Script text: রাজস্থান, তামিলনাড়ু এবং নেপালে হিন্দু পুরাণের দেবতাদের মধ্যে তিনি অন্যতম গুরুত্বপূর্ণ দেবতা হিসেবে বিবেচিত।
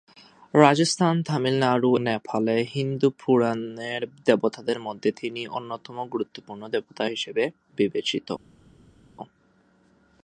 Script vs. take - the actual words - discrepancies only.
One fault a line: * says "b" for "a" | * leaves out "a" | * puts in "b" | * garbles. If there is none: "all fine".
* leaves out "এবং"